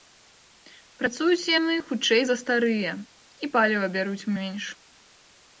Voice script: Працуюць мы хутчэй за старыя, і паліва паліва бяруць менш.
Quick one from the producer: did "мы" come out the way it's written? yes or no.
no